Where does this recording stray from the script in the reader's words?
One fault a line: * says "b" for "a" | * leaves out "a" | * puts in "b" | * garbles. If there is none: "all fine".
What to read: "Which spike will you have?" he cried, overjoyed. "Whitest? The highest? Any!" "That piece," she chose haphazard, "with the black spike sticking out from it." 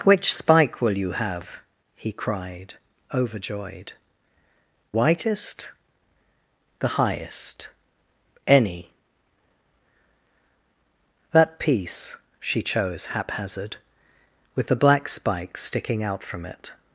all fine